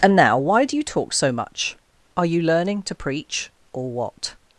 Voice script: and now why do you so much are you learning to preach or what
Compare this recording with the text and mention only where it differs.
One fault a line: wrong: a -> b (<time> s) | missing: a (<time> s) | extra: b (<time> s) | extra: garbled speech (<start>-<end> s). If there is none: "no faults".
extra: talk (0.8 s)